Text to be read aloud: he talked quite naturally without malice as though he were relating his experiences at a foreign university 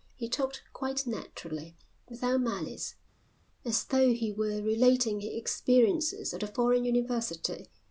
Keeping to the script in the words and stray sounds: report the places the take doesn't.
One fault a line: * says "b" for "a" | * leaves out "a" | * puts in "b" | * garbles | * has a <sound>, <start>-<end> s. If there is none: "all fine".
all fine